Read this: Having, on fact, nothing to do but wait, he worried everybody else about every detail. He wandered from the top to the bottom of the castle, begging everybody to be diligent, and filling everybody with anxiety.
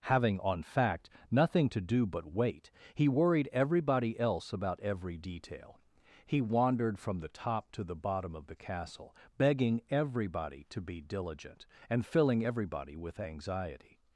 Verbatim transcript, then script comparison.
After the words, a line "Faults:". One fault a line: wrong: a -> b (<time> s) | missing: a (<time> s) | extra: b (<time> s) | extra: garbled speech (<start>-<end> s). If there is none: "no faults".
Having, on fact, nothing to do but wait, he worried everybody else about every detail. He wandered from the top to the bottom of the castle, begging everybody to be diligent, and filling everybody with anxiety.
Faults:
no faults